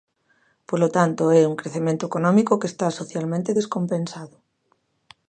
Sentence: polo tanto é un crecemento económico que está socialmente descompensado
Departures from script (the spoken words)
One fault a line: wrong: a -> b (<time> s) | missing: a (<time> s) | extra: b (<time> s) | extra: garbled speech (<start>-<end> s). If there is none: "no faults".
no faults